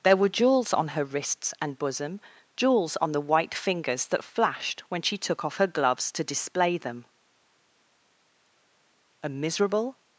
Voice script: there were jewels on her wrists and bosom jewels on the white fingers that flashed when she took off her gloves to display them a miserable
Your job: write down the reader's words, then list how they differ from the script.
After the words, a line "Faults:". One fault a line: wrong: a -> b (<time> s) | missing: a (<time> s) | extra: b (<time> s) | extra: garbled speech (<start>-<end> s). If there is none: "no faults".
there were jewels on her wrists and bosom jewels on the white fingers that flashed when she took off her gloves to display them a miserable
Faults:
no faults